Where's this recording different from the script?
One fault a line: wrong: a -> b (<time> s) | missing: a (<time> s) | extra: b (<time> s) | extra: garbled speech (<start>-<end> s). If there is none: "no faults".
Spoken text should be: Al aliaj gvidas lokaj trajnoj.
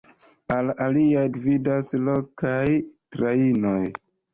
no faults